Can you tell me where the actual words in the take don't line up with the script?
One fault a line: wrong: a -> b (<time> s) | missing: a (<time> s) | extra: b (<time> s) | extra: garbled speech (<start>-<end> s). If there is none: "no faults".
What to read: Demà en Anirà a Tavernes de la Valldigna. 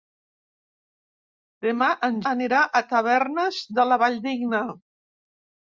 no faults